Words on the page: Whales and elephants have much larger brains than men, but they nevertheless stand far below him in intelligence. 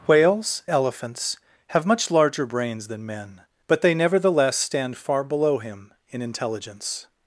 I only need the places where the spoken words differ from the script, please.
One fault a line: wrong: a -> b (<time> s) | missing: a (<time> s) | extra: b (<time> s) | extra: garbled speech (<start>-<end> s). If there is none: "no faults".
missing: and (0.6 s)